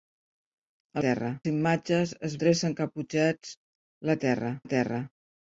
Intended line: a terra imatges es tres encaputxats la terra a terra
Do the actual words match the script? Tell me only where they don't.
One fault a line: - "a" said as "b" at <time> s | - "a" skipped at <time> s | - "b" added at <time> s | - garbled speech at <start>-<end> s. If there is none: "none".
none